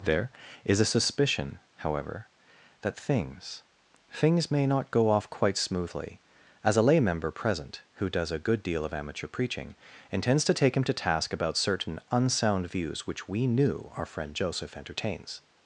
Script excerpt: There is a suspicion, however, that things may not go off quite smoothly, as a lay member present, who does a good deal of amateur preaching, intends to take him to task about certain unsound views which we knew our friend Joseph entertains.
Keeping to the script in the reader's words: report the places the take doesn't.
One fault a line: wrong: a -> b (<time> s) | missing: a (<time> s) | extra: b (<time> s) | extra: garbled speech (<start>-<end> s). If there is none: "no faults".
extra: things (4.1 s)